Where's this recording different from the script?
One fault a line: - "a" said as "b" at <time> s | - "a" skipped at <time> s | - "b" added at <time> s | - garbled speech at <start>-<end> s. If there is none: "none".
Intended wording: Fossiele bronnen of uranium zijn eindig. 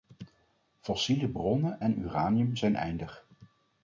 - "of" said as "en" at 1.8 s